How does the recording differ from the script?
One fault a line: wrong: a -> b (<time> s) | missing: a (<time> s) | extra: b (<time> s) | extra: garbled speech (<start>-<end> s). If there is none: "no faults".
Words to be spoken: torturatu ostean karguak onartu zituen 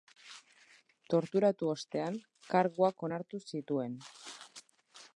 no faults